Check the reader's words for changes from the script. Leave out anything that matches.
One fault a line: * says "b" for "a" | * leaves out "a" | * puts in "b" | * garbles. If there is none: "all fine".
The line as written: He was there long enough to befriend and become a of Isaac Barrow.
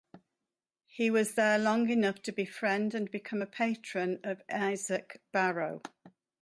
* puts in "patron"